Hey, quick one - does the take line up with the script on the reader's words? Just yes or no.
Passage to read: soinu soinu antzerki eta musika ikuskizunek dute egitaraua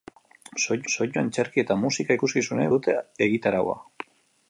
yes